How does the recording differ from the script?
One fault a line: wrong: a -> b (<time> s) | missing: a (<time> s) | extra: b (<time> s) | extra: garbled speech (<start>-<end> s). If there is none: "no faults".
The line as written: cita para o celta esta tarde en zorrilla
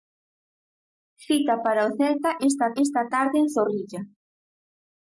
extra: esta (2.8 s)